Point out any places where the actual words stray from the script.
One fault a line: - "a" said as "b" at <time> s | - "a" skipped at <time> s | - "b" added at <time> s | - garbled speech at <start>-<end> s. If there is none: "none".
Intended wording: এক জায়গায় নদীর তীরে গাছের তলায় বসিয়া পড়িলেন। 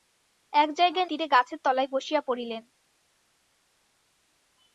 - "নদীর" skipped at 1.1 s